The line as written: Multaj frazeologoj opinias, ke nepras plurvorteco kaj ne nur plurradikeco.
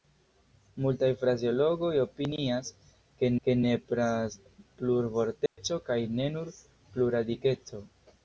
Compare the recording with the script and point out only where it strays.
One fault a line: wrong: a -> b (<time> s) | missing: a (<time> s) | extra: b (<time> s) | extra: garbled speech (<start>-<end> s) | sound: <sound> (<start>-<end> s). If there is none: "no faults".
extra: ke (3.4 s)
sound: dropout (5.5-5.6 s)